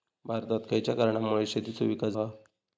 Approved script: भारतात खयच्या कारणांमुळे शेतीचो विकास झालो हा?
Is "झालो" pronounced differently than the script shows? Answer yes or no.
yes